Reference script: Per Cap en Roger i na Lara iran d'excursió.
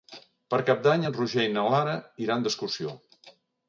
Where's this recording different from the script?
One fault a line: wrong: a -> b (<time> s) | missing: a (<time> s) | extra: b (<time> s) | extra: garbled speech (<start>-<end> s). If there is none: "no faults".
extra: d'Any (0.9 s)